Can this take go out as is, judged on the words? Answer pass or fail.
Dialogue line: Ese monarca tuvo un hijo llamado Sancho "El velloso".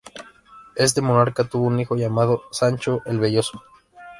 fail